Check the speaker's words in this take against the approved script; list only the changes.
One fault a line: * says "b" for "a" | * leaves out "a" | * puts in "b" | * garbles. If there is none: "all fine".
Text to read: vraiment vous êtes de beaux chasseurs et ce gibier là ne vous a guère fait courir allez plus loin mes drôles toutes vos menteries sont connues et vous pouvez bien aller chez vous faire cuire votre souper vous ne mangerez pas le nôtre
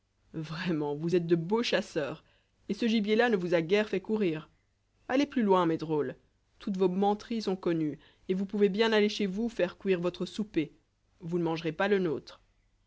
all fine